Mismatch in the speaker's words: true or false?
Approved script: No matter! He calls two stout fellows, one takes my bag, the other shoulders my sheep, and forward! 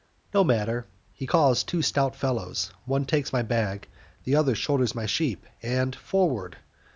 false